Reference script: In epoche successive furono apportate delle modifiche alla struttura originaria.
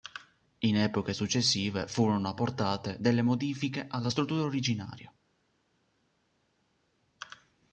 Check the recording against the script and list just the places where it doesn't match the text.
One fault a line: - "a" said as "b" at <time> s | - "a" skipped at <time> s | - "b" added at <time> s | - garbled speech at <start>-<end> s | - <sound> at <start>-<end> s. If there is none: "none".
none